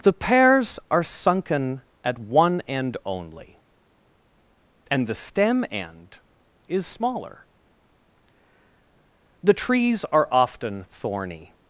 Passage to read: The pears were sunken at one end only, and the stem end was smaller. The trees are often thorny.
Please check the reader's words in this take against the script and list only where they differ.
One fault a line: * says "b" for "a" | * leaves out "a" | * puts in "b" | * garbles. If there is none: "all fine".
* says "are" for "were"
* says "is" for "was"